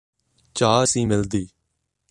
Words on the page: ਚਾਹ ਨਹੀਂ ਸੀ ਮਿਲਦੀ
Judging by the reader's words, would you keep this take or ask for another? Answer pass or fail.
fail